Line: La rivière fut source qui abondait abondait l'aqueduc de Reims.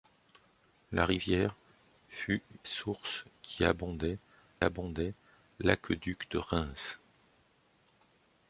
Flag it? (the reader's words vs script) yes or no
no